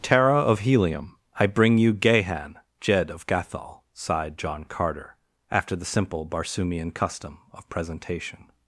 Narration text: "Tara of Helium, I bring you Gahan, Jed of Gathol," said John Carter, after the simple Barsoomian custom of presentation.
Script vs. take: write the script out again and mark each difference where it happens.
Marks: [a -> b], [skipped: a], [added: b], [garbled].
"Tara of Helium, I bring you Gahan, Jed of Gathol," [said -> sighed] John Carter, after the simple Barsoomian custom of presentation.